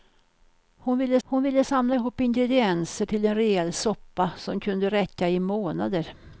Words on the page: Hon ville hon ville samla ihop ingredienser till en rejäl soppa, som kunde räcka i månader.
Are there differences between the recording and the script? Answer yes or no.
no